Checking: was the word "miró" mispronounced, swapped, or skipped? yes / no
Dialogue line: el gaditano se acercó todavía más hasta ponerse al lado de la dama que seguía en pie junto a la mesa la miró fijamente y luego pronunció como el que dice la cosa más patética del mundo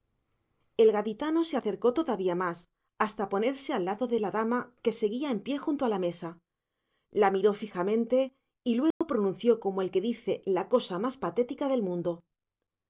no